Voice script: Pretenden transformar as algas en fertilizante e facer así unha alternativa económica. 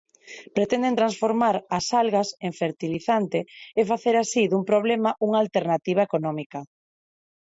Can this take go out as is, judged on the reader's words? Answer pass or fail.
fail